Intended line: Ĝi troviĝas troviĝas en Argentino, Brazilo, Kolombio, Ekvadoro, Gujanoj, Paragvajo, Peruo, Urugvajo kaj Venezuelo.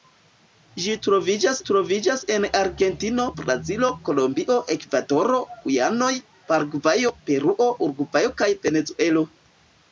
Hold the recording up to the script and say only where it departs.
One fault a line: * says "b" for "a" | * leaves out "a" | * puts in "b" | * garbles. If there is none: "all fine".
all fine